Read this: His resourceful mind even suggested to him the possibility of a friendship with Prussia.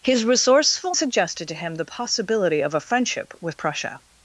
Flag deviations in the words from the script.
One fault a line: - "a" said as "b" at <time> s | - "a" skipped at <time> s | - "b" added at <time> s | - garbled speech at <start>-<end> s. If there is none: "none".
- "mind even" skipped at 0.9 s